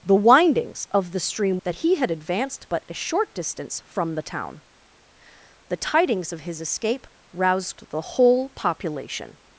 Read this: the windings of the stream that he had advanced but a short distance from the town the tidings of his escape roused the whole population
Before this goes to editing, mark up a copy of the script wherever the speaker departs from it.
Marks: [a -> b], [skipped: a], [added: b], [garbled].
the windings of the stream that he had advanced but a short distance from the town the tidings of his escape roused the whole population